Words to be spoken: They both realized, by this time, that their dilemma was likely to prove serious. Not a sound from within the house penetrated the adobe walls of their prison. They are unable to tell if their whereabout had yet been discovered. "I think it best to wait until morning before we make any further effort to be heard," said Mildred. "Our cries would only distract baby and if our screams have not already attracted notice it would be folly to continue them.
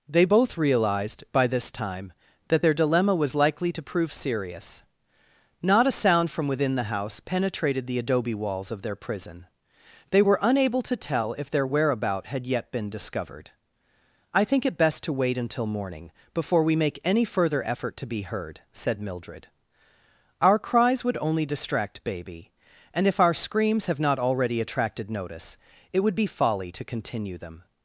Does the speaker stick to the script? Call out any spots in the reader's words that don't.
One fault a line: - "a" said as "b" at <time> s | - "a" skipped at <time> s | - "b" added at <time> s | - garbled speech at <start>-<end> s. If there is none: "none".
- "are" said as "were" at 10.2 s